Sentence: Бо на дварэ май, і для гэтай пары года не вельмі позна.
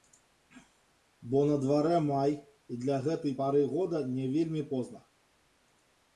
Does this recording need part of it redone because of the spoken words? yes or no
no